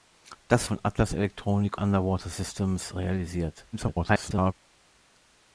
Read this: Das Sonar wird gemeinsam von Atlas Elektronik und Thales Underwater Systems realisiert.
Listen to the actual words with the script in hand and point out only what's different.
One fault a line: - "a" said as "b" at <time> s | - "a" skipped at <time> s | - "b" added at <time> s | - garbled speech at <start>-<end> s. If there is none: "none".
- "Sonar wird gemeinsam" skipped at 0.7 s
- "und Thales" skipped at 1.8 s
- garbled speech at 3.7-4.5 s